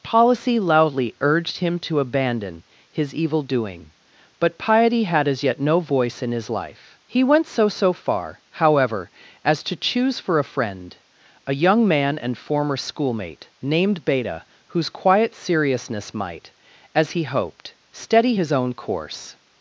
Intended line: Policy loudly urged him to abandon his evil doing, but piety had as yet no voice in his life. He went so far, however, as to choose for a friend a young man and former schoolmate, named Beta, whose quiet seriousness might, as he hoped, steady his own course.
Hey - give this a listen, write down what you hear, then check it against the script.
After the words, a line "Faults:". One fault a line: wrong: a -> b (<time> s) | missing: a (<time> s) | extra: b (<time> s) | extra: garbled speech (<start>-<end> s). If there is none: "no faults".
Policy loudly urged him to abandon his evil doing, but piety had as yet no voice in his life. He went so so far, however, as to choose for a friend a young man and former schoolmate, named Beta, whose quiet seriousness might, as he hoped, steady his own course.
Faults:
extra: so (7.7 s)